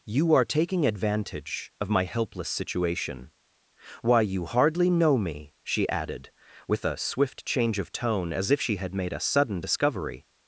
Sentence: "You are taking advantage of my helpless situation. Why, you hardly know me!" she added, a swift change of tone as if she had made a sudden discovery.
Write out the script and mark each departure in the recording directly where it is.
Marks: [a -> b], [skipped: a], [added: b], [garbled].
"You are taking advantage of my helpless situation. Why, you hardly know me!" she added, [added: with] a swift change of tone as if she had made a sudden discovery.